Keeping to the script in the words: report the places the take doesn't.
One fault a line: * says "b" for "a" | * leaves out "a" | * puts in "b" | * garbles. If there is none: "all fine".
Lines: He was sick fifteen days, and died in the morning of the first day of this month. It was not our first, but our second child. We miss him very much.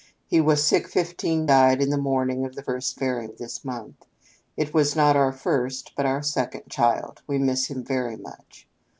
* leaves out "days and"
* says "very" for "day"